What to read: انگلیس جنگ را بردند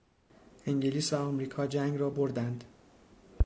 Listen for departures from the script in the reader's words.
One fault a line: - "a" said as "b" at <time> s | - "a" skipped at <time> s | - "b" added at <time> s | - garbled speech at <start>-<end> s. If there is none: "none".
- "و امریکا" added at 1.1 s